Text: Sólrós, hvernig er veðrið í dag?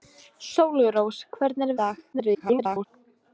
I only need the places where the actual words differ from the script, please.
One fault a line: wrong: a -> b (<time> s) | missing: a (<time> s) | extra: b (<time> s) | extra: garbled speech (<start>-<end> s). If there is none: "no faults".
missing: veðrið (1.7 s)
extra: garbled speech (2.1-2.9 s)